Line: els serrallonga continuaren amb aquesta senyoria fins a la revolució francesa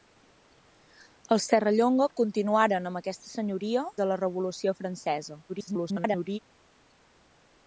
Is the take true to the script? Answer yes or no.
no